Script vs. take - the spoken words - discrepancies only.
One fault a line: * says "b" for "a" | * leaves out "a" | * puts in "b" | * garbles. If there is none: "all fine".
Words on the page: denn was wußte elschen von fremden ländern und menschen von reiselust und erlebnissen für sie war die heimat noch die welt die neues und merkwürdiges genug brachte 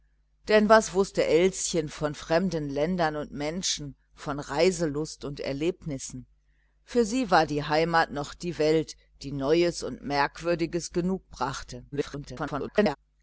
* garbles